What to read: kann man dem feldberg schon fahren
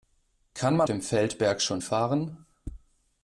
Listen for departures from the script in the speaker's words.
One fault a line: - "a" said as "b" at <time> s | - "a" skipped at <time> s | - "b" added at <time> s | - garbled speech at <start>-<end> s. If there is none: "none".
none